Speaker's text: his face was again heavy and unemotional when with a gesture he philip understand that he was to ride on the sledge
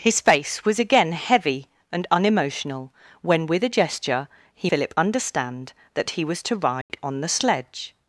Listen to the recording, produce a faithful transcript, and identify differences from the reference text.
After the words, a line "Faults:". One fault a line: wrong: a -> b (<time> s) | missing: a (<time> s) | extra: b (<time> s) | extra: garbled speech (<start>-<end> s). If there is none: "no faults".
his face was again heavy and unemotional when with a gesture he philip understand that he was to ride on the sledge
Faults:
no faults